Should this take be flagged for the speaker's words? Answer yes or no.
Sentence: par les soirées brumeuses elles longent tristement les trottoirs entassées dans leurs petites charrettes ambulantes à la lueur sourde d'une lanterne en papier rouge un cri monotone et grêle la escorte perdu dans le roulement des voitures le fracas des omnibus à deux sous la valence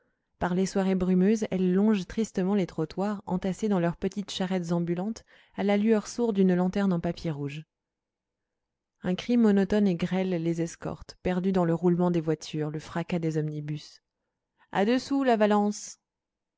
yes